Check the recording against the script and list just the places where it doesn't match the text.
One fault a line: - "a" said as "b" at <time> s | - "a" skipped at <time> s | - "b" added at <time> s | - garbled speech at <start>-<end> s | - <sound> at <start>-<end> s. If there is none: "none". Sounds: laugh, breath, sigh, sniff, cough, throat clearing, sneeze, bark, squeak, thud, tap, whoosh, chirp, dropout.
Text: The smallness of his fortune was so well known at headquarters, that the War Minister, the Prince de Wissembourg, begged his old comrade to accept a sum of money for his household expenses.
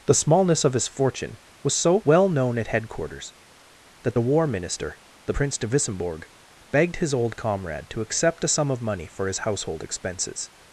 none